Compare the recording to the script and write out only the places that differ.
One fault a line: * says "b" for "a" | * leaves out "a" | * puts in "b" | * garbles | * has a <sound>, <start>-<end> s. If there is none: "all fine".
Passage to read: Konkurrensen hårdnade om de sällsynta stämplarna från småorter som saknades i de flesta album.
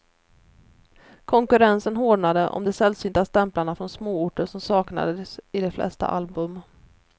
all fine